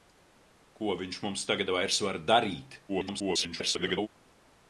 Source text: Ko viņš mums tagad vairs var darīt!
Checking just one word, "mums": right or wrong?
right